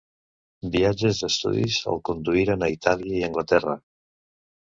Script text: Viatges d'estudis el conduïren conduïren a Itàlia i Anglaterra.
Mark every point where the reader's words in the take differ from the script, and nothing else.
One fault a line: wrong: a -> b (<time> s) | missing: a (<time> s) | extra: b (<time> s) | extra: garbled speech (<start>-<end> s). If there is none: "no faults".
missing: conduïren (2.7 s)